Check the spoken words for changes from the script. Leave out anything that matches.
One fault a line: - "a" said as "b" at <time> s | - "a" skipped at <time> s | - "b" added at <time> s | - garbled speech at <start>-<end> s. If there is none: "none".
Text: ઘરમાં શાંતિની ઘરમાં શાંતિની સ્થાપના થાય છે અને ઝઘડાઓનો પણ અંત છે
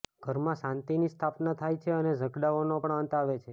- "ઘરમાં શાંતિની" skipped at 1.1 s
- "આવે" added at 3.2 s